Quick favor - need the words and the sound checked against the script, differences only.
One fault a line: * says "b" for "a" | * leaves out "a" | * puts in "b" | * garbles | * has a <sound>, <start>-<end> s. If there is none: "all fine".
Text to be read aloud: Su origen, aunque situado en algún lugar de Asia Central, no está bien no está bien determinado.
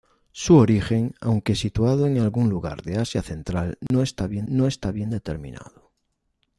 * has a dropout, 3.9-3.9 s